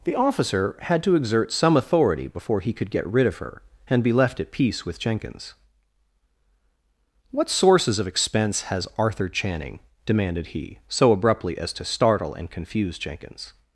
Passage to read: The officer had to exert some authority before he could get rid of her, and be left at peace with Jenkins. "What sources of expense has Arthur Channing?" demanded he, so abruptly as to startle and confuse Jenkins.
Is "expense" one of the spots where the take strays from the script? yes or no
no